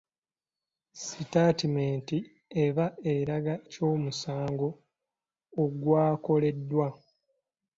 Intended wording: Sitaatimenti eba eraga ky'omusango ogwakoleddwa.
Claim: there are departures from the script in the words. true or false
false